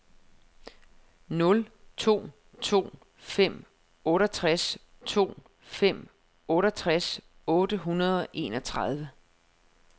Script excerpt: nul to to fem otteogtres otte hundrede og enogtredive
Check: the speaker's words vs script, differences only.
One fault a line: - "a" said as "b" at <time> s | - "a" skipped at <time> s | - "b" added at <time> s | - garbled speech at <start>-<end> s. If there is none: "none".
- "to fem otteogtres" added at 5.1 s